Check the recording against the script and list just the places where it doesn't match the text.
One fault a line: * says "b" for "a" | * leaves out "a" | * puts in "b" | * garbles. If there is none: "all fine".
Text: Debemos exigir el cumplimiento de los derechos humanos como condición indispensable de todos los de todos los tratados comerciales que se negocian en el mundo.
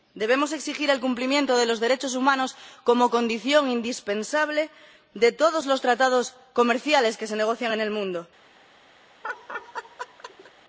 * leaves out "de todos los"